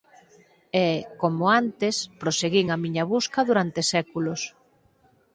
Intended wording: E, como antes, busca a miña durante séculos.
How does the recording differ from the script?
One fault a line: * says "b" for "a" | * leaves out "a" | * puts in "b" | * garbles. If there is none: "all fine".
* says "proseguín" for "busca"
* puts in "busca"